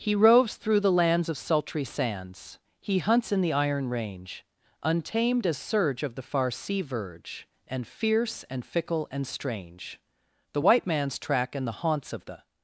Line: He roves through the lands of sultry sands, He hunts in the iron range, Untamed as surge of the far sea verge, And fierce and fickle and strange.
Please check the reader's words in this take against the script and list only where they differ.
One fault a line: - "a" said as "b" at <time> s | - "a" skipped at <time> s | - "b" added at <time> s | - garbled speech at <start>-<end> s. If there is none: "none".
- "The white man's track and the haunts of the" added at 10.5 s